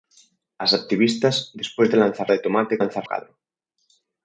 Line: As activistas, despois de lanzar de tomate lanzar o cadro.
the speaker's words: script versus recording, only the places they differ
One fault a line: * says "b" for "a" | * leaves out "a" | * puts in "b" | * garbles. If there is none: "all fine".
all fine